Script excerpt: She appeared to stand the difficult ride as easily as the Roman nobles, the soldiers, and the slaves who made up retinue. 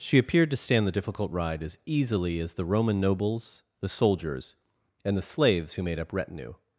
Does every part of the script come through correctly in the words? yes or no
yes